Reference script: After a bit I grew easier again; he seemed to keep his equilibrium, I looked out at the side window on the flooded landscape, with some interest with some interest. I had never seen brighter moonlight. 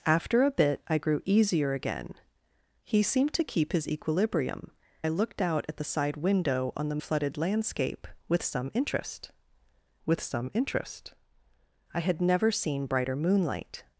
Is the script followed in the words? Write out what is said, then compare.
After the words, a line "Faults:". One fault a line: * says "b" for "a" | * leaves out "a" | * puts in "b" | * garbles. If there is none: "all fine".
After a bit I grew easier again; he seemed to keep his equilibrium, I looked out at the side window on the flooded landscape, with some interest with some interest. I had never seen brighter moonlight.
Faults:
all fine